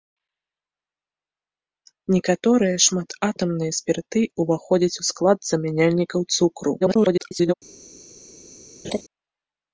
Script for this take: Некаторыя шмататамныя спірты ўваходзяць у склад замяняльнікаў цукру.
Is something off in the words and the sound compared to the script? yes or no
yes